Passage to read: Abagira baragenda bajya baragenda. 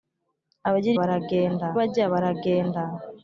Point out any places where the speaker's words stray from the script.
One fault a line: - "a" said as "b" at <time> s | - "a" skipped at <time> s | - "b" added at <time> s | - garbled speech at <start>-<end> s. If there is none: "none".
none